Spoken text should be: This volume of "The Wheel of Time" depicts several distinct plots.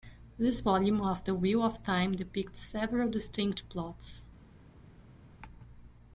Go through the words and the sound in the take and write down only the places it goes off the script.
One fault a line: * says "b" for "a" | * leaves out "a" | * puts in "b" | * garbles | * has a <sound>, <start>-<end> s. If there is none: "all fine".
all fine